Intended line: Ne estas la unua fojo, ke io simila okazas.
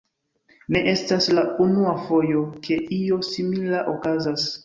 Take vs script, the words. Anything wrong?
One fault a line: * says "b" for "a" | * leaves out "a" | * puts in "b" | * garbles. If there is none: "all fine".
all fine